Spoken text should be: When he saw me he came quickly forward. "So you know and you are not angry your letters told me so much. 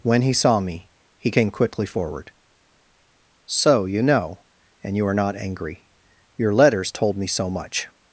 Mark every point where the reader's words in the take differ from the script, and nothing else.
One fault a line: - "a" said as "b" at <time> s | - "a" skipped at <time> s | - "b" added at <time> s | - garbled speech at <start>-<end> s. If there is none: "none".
none